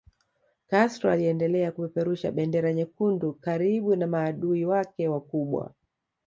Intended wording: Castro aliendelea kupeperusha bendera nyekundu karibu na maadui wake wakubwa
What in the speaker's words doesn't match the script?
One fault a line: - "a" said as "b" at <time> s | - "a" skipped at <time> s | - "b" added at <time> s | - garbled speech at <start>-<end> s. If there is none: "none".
none